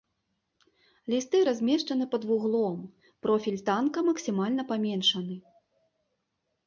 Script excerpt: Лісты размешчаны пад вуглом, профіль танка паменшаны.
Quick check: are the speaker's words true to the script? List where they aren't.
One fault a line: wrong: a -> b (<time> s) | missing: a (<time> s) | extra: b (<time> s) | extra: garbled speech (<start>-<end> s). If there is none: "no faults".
extra: максімальна (4.1 s)